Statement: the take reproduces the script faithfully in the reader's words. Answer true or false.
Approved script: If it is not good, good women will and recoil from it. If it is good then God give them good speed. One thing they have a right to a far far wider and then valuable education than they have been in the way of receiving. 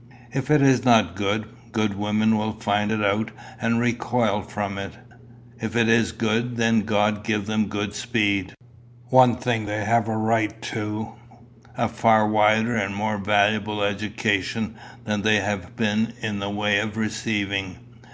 false